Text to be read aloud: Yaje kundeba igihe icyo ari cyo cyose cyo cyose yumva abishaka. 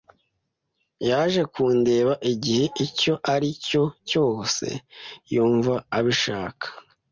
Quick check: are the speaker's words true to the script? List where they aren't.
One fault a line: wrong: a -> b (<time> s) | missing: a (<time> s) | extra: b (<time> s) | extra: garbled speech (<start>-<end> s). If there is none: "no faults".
missing: cyo cyose (4.7 s)